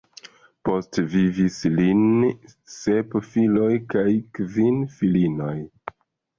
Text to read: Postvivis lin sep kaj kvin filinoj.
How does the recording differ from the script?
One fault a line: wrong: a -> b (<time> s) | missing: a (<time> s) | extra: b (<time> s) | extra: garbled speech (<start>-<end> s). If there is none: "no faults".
extra: filoj (3.3 s)